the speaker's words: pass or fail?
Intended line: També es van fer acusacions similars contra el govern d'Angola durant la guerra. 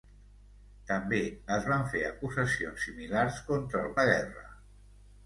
fail